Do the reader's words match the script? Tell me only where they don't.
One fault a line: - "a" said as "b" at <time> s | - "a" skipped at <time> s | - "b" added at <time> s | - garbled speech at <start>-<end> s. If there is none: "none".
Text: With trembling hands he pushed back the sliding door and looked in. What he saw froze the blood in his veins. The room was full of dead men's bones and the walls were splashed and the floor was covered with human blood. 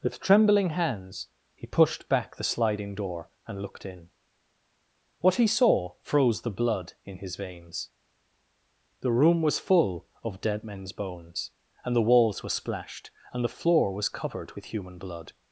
none